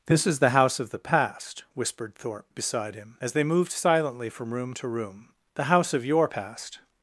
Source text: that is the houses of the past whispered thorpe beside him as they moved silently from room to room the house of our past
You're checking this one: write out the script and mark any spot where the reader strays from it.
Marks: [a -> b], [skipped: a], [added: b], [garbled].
[that -> this] is the [houses -> house] of the past whispered thorpe beside him as they moved silently from room to room the house of [our -> your] past